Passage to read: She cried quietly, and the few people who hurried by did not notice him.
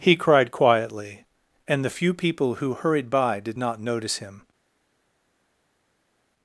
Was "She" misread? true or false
true